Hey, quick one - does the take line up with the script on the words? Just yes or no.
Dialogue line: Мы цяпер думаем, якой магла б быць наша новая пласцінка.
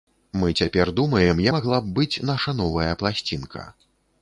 no